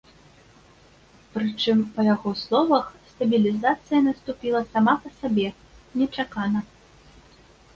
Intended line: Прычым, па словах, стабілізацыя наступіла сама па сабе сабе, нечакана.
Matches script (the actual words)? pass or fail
fail